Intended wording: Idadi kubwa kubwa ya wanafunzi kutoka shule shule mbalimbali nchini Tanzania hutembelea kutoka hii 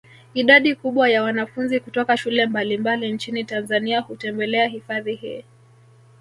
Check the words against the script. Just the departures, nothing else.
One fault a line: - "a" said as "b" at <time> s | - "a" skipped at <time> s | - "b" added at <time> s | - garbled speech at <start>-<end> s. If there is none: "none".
- "kubwa" skipped at 1.1 s
- "shule" skipped at 2.5 s
- "kutoka" said as "hifadhi" at 4.7 s